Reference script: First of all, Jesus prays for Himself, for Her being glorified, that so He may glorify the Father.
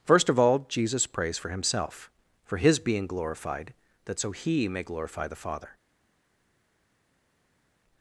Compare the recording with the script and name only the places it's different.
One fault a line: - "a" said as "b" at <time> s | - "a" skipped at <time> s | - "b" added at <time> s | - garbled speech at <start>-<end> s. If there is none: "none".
- "Her" said as "His" at 2.6 s